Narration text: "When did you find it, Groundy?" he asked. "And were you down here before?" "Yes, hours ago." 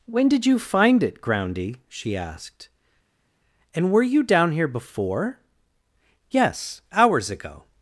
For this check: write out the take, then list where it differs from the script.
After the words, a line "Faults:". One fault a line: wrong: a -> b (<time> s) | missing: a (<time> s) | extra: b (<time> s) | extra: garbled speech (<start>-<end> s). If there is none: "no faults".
"When did you find it, Groundy?" she asked. "And were you down here before?" "Yes, hours ago."
Faults:
wrong: he -> she (1.9 s)